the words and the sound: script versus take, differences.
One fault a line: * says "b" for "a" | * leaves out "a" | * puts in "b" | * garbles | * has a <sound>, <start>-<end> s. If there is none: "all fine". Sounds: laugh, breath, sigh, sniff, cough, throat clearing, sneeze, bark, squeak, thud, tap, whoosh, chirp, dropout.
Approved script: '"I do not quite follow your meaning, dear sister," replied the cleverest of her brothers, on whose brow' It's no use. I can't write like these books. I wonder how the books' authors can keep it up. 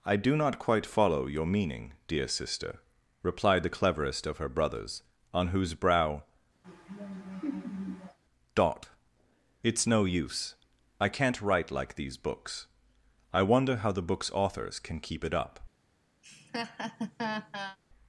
* has a laugh, 6.6-8.2 s
* puts in "dot"
* has a laugh, 16.2-17.8 s